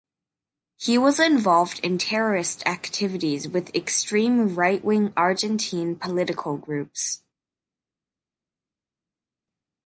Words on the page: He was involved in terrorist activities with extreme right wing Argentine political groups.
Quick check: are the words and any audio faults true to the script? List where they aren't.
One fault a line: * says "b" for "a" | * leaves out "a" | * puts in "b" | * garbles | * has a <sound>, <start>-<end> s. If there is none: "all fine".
all fine